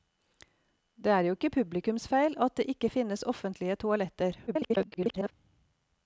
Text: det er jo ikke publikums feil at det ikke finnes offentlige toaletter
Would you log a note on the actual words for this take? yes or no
yes